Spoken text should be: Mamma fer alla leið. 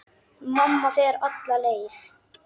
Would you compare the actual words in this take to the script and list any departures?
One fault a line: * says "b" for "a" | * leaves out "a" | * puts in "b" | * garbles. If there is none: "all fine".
all fine